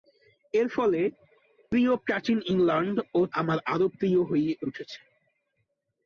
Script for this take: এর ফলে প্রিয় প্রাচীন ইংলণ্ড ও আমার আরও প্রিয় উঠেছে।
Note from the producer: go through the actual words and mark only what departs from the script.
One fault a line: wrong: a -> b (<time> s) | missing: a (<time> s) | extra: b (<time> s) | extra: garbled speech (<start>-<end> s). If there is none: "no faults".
no faults